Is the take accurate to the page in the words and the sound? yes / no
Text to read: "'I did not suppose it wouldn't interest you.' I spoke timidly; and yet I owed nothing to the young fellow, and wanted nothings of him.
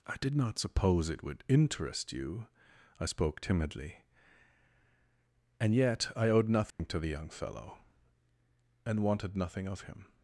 no